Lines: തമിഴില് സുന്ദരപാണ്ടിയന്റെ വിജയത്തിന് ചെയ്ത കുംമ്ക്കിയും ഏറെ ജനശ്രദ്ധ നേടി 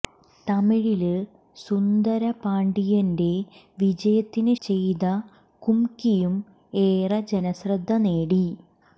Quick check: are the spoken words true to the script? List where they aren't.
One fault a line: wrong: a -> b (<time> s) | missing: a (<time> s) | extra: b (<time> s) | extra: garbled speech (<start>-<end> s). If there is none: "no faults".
no faults